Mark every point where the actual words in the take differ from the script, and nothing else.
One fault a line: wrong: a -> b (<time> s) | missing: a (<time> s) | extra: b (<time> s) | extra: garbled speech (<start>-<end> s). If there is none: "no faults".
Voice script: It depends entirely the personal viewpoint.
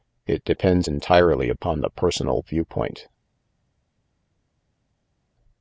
extra: upon (1.5 s)